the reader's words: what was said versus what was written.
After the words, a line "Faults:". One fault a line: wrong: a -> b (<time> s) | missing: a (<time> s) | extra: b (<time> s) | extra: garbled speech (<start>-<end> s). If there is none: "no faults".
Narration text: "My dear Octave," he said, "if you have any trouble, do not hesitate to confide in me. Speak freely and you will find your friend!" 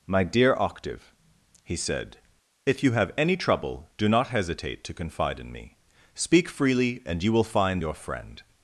"My dear Octave," he said, "if you have any trouble, do not hesitate to confide in me. Speak freely and you will find your friend!"
Faults:
no faults